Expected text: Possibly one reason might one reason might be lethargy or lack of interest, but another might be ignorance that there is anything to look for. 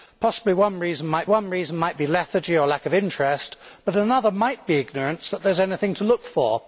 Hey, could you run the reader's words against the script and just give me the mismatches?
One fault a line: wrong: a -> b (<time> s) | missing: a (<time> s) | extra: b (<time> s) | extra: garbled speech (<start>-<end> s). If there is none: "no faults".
no faults